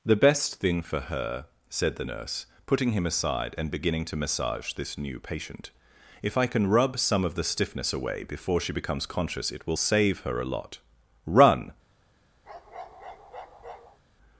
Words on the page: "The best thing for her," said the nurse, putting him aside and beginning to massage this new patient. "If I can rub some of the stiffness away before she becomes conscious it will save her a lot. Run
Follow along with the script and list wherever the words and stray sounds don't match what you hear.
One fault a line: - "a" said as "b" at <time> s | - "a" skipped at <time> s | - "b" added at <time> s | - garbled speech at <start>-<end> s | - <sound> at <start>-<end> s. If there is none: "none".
- bark at 12.4-14.0 s